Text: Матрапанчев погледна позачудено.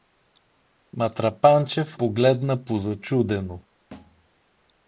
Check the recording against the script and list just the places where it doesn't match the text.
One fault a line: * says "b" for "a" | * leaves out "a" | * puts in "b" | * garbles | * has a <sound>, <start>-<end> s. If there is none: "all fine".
* has a thud, 3.9-4.3 s